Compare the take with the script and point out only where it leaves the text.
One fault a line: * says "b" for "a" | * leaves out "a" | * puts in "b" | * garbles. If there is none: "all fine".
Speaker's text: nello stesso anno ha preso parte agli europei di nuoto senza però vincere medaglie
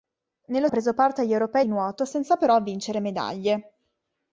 * leaves out "stesso anno"
* leaves out "di"